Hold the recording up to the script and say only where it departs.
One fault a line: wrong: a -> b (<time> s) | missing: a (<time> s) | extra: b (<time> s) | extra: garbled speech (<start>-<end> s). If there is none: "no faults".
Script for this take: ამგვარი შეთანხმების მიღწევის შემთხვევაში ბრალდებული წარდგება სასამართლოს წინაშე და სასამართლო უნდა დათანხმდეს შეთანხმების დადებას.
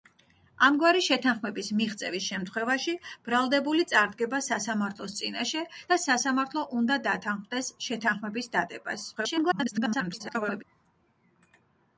extra: garbled speech (9.2-10.6 s)